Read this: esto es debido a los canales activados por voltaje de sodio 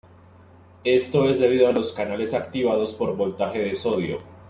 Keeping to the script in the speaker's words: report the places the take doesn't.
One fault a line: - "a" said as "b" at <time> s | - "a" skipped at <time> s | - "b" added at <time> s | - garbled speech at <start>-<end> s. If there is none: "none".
none